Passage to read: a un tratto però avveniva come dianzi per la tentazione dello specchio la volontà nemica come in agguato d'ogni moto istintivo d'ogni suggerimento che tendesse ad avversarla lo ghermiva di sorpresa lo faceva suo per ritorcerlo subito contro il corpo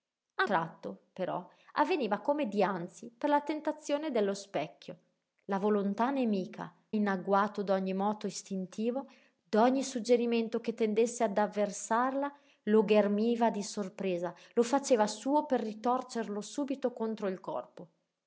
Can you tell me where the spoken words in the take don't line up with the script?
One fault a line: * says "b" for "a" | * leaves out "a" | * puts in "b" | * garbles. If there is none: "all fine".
* leaves out "un"
* leaves out "come"